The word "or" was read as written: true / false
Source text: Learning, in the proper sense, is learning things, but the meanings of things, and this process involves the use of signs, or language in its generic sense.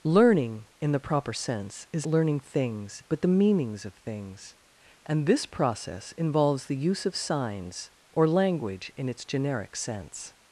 true